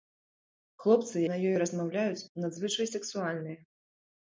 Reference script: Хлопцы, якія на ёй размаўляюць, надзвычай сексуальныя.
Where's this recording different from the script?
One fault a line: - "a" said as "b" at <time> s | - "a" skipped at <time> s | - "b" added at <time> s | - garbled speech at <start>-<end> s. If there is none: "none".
- "якія" skipped at 1.1 s